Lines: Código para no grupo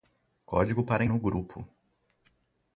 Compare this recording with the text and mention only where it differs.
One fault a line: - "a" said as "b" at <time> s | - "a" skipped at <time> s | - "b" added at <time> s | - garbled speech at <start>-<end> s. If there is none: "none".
none